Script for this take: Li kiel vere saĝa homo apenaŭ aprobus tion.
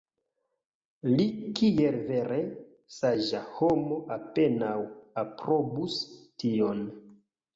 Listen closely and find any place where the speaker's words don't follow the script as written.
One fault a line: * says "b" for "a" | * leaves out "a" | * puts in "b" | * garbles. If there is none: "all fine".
all fine